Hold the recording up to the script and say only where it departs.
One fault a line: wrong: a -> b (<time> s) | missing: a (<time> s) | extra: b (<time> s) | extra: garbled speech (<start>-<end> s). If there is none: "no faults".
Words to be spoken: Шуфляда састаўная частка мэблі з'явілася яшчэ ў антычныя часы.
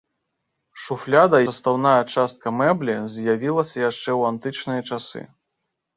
no faults